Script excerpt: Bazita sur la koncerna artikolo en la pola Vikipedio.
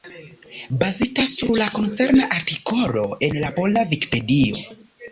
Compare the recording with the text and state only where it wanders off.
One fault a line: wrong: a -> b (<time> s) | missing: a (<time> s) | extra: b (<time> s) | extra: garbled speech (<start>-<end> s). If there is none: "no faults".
no faults